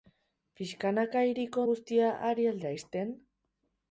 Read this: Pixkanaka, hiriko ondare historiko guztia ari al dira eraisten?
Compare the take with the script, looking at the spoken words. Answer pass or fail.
fail